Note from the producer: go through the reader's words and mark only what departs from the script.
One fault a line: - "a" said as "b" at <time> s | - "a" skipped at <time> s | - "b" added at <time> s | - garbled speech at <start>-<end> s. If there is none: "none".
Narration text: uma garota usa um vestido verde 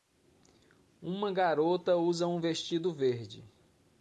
none